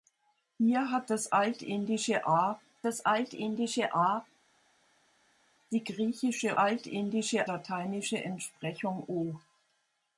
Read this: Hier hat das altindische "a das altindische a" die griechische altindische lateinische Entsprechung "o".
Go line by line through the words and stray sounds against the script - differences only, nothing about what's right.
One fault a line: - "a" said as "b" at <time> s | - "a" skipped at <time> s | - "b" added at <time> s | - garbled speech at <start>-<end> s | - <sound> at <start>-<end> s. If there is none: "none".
none